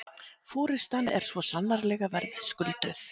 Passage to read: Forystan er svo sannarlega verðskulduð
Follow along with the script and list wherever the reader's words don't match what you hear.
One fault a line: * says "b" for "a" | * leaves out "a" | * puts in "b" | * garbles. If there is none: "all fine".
all fine